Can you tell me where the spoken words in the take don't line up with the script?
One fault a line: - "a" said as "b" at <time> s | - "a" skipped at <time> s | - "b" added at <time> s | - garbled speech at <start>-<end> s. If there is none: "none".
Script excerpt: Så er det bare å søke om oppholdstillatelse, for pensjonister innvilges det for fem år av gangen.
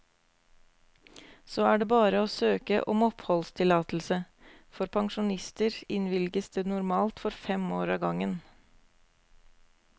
- "normalt" added at 6.7 s